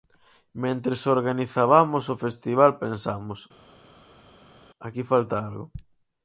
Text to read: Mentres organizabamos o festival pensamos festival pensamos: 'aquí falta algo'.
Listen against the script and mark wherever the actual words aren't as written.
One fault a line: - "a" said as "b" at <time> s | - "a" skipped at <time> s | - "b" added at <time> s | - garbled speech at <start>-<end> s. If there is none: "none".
- "festival pensamos" skipped at 3.4 s